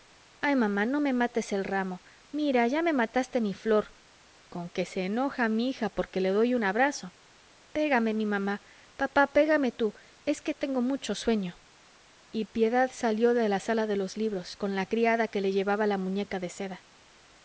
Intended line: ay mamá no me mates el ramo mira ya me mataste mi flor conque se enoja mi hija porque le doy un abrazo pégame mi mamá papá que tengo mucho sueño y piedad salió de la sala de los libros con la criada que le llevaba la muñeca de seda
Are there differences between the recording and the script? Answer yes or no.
yes